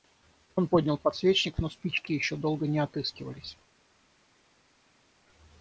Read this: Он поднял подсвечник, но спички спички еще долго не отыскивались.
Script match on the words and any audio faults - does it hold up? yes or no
no